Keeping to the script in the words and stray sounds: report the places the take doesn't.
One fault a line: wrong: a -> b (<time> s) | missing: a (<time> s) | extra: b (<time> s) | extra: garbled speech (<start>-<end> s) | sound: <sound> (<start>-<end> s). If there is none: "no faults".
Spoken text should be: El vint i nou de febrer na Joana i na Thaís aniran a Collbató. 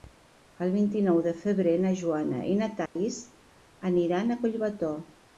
sound: dropout (2.9-3.0 s)